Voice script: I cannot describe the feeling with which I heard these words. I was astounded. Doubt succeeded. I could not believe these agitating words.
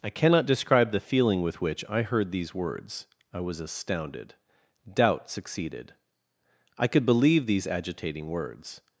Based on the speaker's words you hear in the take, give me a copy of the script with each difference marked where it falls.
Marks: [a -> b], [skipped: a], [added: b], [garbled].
I cannot describe the feeling with which I heard these words. I was astounded. Doubt succeeded. I could [skipped: not] believe these agitating words.